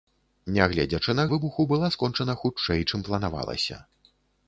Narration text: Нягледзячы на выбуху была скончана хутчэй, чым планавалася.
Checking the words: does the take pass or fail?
pass